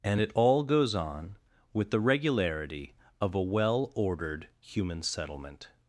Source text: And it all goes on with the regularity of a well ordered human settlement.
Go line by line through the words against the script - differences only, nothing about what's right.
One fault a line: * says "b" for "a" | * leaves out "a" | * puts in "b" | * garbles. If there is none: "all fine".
all fine